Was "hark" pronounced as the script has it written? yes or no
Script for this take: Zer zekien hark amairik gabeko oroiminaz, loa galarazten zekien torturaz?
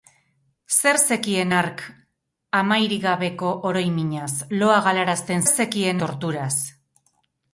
yes